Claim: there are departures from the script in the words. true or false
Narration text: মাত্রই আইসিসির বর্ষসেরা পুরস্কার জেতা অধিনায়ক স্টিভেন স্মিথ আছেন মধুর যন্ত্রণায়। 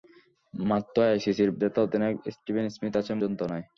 true